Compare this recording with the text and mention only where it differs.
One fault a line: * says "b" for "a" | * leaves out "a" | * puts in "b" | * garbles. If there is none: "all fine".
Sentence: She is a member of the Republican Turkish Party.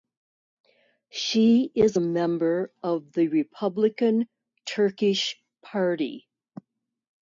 all fine